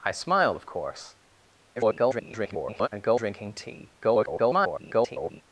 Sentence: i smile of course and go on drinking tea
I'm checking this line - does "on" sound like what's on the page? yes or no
no